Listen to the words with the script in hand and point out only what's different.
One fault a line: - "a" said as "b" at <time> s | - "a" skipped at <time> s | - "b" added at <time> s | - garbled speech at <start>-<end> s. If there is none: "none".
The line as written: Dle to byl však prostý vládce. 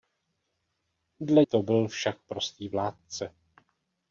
none